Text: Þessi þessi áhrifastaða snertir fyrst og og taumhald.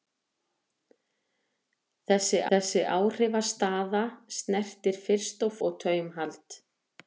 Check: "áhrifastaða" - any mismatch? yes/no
no